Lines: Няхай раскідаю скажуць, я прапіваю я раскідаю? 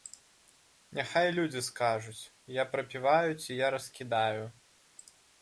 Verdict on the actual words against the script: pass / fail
fail